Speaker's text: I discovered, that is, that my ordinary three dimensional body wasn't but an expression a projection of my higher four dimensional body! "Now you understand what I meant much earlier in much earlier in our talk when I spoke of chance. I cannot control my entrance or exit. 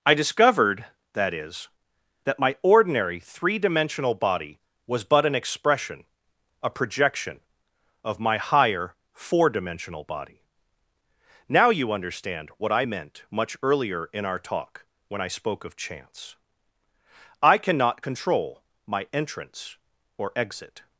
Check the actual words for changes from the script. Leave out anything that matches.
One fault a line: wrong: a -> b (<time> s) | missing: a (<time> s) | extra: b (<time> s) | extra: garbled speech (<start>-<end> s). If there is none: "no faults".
wrong: wasn't -> was (4.9 s)
missing: much earlier in (14.2 s)